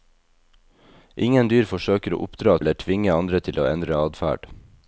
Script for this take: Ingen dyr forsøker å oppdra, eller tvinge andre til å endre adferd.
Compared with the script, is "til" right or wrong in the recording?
right